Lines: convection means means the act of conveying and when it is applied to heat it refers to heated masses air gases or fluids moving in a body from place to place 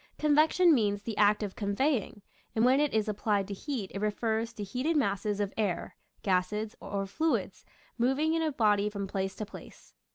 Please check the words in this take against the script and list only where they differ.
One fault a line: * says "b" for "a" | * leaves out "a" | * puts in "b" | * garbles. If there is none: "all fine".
* leaves out "means"
* puts in "of"